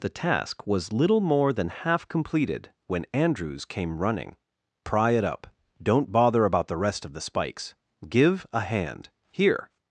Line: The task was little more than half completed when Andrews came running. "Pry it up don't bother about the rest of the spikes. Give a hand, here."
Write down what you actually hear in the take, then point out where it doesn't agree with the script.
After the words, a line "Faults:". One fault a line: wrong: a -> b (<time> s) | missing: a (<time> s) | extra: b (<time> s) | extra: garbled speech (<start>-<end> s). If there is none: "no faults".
The task was little more than half completed when Andrews came running. "Pry it up don't bother about the rest of the spikes. Give a hand, here."
Faults:
no faults